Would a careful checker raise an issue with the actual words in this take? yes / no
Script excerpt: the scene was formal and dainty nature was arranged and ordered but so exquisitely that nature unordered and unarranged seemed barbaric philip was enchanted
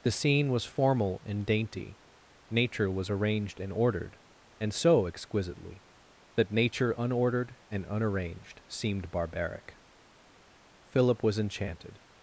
yes